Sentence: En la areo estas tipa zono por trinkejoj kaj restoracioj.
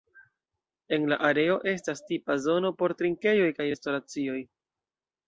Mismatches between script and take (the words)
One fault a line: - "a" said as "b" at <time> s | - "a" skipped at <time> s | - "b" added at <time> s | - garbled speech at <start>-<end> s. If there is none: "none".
none